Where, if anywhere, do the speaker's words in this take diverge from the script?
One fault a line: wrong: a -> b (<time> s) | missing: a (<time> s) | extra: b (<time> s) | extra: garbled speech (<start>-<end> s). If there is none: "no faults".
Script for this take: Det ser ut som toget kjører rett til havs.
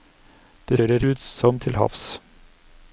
wrong: ser -> kjører (0.8 s)
missing: toget kjører rett (1.6 s)